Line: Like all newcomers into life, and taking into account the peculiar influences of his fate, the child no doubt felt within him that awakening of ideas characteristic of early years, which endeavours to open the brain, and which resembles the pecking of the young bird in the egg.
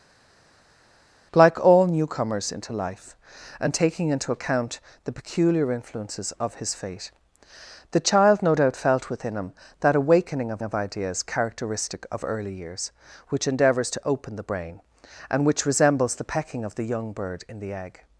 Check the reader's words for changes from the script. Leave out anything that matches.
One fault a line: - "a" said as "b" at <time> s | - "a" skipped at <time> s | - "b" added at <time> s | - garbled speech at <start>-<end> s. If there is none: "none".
- "of" added at 10.6 s